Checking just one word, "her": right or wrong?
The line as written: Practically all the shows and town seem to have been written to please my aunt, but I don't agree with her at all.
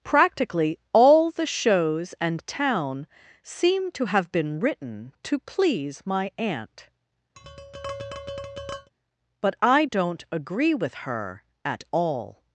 right